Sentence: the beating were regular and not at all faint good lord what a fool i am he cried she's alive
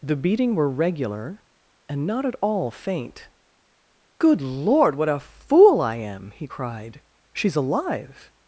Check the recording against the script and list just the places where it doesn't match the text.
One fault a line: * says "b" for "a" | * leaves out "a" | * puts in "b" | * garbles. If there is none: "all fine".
all fine